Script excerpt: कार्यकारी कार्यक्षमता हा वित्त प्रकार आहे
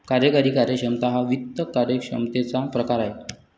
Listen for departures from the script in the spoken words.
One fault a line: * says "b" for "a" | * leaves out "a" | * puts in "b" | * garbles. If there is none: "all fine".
* puts in "कार्यक्षमतेचा"